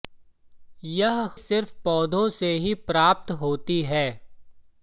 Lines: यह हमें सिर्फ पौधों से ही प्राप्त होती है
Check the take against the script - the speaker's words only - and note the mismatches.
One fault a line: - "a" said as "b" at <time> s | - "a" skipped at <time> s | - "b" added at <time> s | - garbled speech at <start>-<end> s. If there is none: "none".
- "हमें" skipped at 1.3 s